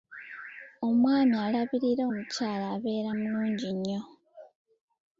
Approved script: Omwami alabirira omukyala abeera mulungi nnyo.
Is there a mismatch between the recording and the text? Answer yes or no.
no